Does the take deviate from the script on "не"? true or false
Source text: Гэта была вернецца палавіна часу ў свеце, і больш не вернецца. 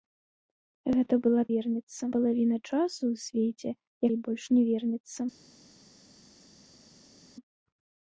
false